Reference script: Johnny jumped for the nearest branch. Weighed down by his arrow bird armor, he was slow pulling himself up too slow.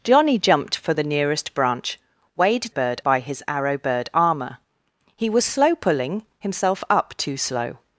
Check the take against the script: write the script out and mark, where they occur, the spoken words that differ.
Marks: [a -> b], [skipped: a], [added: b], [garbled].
Johnny jumped for the nearest branch. Weighed [down -> bird] by his arrow bird armor, he was slow pulling himself up too slow.